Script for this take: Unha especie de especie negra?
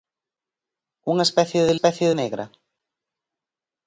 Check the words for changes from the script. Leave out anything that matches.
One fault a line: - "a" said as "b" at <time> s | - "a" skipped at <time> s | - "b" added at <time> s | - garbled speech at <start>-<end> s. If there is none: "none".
none